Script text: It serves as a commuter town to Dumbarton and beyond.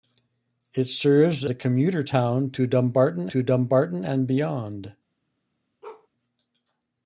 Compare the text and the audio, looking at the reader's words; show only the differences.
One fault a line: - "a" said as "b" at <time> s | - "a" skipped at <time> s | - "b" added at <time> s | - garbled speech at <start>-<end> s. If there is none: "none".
- "as" skipped at 1.4 s
- "to Dumbarton" added at 3.3 s